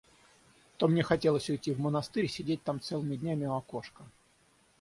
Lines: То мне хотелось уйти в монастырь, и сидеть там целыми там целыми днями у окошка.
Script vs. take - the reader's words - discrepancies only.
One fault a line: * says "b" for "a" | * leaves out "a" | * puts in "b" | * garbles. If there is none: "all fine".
* leaves out "там целыми"